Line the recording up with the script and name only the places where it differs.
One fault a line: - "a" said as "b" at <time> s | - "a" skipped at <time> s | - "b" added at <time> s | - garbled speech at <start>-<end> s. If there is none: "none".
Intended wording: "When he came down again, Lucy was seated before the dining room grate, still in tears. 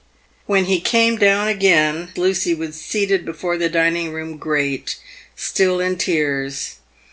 none